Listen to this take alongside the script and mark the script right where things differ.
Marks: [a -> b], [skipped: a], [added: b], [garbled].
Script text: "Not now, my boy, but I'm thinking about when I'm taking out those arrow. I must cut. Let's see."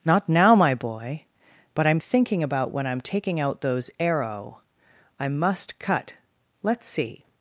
"Not now, my boy, but I'm thinking about when I'm taking out those arrow. I must cut. Let's see."